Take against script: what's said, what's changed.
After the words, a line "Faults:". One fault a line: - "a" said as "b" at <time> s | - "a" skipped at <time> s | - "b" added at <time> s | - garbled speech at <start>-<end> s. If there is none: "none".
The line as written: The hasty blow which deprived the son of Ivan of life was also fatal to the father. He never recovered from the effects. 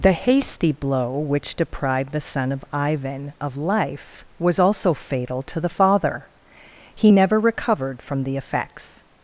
The hasty blow which deprived the son of Ivan of life was also fatal to the father. He never recovered from the effects.
Faults:
none